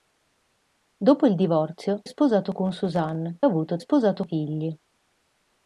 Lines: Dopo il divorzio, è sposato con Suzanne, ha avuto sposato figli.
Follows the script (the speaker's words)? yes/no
yes